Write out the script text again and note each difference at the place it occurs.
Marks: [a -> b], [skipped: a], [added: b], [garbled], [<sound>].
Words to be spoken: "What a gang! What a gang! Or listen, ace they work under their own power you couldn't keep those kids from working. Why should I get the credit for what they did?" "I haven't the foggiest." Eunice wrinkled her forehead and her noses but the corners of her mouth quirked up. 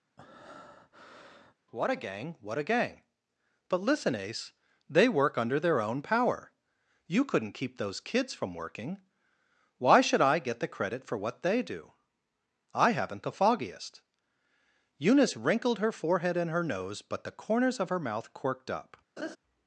[breath] "What a gang! What a gang! [Or -> But] listen, ace they work under their own power you couldn't keep those kids from working. Why should I get the credit for what they [did?" -> do] "I haven't the foggiest." Eunice wrinkled her forehead and her [noses -> nose] but the corners of her mouth quirked up. [laugh]